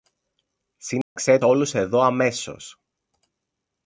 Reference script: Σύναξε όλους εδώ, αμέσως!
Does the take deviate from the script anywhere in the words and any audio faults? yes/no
yes